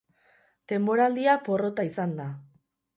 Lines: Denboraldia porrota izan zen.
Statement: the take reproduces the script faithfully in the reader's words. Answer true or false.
false